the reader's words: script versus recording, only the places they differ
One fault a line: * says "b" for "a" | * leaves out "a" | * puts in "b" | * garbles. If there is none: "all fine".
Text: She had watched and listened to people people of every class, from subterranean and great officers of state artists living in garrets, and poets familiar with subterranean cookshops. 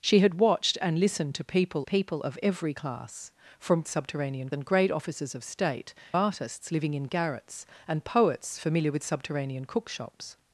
all fine